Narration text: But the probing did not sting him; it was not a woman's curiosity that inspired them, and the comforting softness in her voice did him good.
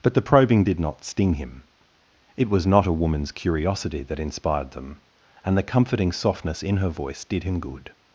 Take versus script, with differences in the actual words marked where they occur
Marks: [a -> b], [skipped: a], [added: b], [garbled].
But the probing did not sting him; it was not a woman's curiosity that inspired them, and the comforting softness in her voice did him good.